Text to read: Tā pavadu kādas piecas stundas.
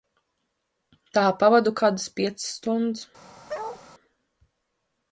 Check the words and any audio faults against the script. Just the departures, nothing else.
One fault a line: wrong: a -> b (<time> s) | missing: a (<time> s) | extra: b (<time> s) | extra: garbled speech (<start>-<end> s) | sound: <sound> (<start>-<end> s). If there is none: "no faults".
sound: bark (3.5-3.8 s)